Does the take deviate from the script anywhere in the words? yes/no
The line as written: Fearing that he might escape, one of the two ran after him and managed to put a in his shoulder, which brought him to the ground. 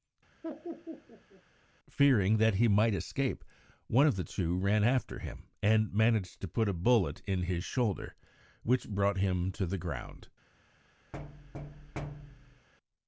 yes